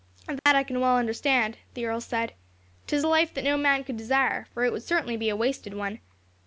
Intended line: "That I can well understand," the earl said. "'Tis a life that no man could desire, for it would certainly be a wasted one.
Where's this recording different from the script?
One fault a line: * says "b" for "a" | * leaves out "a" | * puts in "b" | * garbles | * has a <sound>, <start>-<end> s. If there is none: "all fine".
* has a dropout, 0.4-0.5 s